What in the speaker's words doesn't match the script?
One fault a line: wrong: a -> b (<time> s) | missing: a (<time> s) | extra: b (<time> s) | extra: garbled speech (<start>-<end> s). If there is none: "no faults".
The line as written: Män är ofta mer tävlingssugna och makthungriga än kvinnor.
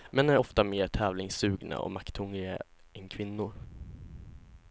no faults